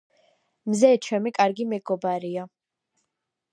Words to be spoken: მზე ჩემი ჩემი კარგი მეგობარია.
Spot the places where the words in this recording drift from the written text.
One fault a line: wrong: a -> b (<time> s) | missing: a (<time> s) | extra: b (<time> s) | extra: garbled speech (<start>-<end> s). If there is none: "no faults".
missing: ჩემი (1.3 s)